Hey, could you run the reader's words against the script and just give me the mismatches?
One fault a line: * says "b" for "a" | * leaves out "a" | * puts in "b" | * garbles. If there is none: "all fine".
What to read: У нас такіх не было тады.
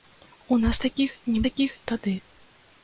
* says "такіх" for "было"